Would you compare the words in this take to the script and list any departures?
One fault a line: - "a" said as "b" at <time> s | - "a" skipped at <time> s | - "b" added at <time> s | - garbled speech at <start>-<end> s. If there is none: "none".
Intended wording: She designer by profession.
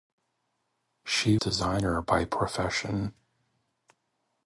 none